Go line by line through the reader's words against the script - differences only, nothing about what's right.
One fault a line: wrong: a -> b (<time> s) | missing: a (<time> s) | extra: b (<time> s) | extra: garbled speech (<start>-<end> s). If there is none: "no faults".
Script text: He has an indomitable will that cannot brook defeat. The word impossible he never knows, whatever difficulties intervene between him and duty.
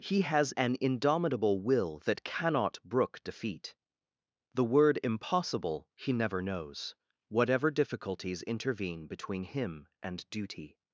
no faults